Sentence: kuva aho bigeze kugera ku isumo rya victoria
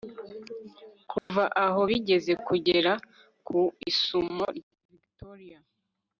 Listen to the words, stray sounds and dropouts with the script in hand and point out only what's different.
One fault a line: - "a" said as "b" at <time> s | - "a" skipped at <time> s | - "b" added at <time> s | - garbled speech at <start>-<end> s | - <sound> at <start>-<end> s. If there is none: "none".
- dropout at 1.2-1.3 s